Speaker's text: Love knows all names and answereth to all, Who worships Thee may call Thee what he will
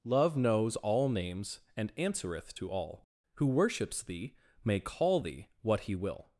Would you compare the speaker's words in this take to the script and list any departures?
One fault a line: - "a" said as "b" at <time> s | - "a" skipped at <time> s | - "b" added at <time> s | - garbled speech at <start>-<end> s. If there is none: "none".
none